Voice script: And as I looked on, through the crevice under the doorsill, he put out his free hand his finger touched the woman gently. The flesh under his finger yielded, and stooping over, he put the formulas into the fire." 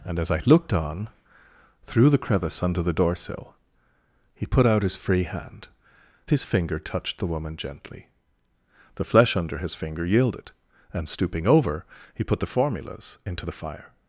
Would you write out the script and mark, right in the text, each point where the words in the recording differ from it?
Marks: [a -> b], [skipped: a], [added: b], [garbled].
And as I looked on, through the crevice under the doorsill, he put out his free hand his finger touched the woman gently. The flesh under his finger yielded, and stooping over, he put the formulas into the fire."